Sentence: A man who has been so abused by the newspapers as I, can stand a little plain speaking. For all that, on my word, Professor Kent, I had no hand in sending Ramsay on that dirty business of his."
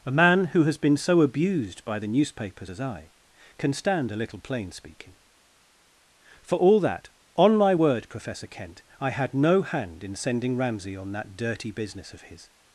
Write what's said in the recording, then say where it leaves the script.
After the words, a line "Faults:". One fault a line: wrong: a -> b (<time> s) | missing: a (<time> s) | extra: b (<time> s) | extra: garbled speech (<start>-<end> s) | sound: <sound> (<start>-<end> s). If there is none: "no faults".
A man who has been so abused by the newspapers as I, can stand a little plain speaking. For all that, on my word, Professor Kent, I had no hand in sending Ramsay on that dirty business of his."
Faults:
no faults